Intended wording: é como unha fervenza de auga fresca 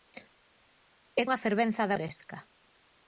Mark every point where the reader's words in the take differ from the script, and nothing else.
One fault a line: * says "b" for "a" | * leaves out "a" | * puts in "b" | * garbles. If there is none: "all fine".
* leaves out "como"
* leaves out "auga"